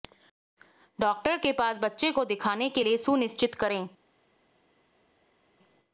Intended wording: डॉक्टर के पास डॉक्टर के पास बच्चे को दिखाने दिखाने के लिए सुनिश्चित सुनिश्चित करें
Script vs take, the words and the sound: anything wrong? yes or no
yes